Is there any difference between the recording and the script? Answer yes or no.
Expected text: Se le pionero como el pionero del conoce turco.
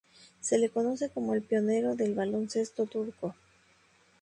yes